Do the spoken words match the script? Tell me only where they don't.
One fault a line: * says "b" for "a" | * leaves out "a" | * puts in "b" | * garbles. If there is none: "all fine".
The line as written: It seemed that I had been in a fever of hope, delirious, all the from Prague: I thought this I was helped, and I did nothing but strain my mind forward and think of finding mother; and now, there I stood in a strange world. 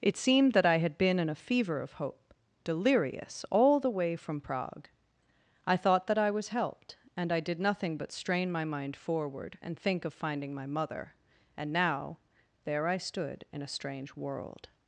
* puts in "way"
* says "that" for "this"
* puts in "my"